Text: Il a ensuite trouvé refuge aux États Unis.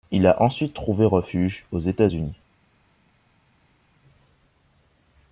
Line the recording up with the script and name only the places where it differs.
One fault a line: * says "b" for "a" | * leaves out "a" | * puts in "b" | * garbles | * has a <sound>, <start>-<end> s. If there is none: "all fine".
all fine